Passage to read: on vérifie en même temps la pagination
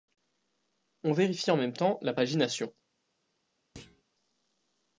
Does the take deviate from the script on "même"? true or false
false